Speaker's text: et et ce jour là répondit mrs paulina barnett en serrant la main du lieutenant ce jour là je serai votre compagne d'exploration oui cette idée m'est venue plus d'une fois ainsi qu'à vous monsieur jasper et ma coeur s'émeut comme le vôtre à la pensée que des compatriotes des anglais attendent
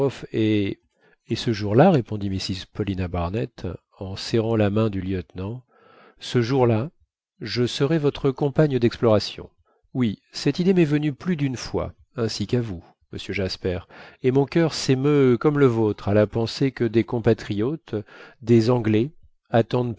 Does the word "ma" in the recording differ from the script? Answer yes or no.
yes